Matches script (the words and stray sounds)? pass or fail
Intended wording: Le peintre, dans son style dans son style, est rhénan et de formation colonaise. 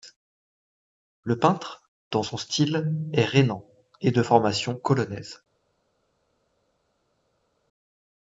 fail